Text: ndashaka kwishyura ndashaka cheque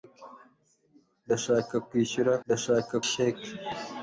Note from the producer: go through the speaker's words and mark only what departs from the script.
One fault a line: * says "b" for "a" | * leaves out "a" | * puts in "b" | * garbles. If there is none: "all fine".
all fine